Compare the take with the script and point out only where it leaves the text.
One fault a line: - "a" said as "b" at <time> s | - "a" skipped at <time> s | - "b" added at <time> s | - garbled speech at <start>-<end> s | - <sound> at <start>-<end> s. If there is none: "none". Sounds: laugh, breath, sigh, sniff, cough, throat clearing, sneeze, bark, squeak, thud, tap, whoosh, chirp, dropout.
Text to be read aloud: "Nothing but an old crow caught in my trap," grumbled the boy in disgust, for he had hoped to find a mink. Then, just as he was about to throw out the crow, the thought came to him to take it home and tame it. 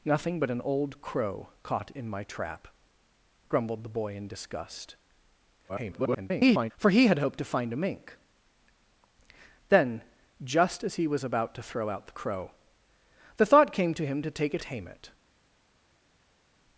- garbled speech at 5.7-6.7 s
- "home and" skipped at 14.6 s